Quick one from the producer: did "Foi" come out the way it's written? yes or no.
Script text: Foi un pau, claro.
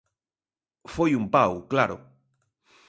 yes